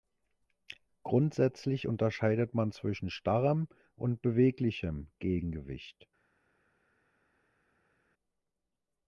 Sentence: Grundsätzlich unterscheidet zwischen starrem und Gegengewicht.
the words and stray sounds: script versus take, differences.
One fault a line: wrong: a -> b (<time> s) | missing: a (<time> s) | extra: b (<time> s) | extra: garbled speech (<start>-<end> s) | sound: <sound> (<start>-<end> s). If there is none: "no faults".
extra: man (2.5 s)
extra: beweglichem (4.2 s)